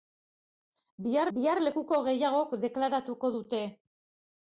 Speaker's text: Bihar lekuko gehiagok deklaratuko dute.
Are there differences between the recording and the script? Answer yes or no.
yes